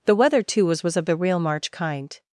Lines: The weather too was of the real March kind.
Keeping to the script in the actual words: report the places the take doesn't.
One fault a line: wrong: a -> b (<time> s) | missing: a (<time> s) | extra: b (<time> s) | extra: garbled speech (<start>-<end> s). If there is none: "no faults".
extra: was (0.8 s)